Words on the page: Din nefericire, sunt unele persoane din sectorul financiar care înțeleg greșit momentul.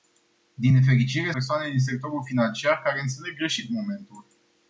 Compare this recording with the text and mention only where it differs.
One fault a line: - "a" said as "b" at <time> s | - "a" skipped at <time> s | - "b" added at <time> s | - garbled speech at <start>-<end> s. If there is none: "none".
- "sunt unele" skipped at 1.3 s